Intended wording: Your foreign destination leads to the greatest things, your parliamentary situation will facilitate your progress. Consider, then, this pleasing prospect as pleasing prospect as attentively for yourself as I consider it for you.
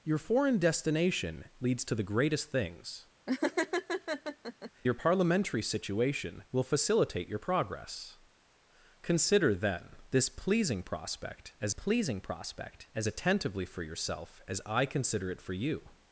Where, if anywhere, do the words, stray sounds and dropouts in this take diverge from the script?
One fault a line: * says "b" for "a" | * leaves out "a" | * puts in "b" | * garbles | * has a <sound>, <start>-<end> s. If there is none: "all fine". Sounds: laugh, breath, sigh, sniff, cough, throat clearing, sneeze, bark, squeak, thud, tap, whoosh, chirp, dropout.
* has a laugh, 3.3-4.7 s